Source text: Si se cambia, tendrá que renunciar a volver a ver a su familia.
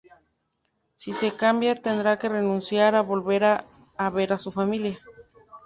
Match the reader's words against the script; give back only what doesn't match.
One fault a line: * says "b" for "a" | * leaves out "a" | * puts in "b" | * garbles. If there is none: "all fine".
all fine